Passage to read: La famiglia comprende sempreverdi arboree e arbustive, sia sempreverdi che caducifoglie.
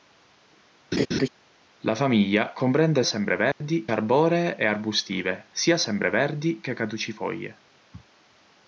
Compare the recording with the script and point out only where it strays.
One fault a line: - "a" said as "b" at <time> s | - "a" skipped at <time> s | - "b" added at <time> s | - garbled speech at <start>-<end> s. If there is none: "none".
none